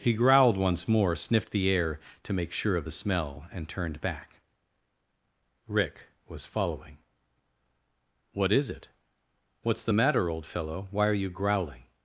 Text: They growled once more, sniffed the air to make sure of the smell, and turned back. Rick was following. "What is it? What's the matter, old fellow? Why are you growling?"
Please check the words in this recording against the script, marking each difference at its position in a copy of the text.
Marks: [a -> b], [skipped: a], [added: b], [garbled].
[They -> He] growled once more, sniffed the air to make sure of the smell, and turned back. Rick was following. "What is it? What's the matter, old fellow? Why are you growling?"